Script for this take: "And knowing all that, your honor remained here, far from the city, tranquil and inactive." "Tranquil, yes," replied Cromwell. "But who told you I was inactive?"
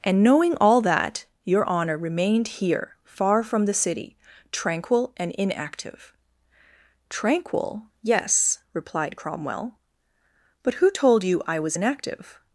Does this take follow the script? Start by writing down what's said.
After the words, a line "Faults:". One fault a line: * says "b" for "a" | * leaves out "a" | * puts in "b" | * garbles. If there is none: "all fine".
"And knowing all that, your honor remained here, far from the city, tranquil and inactive." "Tranquil, yes," replied Cromwell. "But who told you I was inactive?"
Faults:
all fine